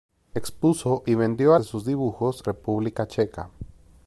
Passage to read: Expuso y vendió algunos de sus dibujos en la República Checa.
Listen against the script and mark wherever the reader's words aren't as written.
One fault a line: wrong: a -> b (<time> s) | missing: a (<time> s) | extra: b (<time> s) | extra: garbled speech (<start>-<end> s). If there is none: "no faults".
missing: algunos (1.5 s)
missing: en la (2.4 s)